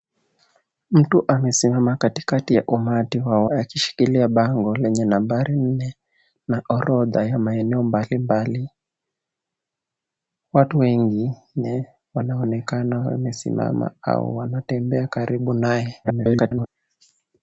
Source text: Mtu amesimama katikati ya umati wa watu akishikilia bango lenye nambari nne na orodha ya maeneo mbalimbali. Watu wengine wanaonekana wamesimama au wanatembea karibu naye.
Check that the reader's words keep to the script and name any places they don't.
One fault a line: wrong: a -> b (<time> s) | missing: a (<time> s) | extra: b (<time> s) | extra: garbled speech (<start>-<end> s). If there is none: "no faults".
missing: watu (3.4 s)
extra: garbled speech (16.0-16.7 s)